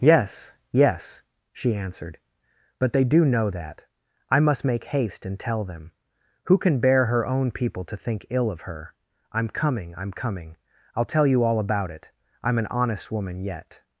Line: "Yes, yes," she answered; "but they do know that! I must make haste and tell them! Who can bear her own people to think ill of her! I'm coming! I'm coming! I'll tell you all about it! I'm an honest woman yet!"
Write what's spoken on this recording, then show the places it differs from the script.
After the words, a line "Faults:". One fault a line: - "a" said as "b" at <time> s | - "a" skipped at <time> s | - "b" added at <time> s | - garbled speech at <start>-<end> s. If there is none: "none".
"Yes, yes," she answered; "but they do know that! I must make haste and tell them! Who can bear her own people to think ill of her! I'm coming! I'm coming! I'll tell you all about it! I'm an honest woman yet!"
Faults:
none